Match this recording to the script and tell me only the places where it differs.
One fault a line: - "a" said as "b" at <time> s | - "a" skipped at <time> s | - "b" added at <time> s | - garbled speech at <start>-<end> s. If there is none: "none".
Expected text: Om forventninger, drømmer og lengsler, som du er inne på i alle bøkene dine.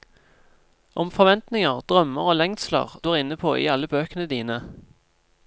- "som" skipped at 3.0 s